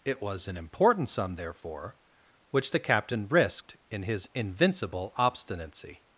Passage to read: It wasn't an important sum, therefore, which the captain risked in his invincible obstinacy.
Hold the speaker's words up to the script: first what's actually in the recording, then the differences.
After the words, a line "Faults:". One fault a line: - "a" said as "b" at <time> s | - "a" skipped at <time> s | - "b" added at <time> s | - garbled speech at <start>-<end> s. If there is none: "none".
It was an important sum, therefore, which the captain risked in his invincible obstinacy.
Faults:
- "wasn't" said as "was" at 0.2 s